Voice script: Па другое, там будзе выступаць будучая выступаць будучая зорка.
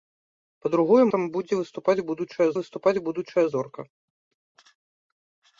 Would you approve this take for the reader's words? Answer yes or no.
yes